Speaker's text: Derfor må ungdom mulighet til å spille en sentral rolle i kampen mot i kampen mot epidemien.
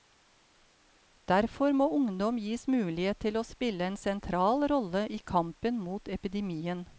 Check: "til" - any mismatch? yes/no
no